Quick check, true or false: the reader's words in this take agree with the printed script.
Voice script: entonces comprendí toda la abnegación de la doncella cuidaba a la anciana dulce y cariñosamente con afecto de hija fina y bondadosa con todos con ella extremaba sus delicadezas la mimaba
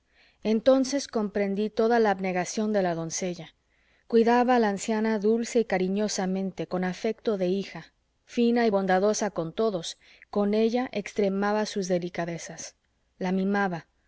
true